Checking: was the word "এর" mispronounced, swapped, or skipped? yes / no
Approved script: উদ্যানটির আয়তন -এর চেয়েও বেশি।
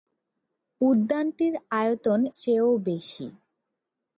yes